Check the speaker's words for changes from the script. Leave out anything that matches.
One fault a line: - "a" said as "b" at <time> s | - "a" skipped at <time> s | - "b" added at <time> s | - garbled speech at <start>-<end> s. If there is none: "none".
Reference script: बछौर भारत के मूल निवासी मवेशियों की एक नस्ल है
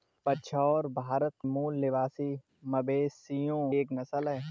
- "के" skipped at 1.3 s
- "की" skipped at 3.6 s